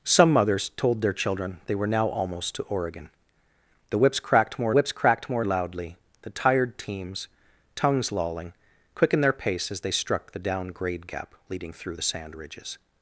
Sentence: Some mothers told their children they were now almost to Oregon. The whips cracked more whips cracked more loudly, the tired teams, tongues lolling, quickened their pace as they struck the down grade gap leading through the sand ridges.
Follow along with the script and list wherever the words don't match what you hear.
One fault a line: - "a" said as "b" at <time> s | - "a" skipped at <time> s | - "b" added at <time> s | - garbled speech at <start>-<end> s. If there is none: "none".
none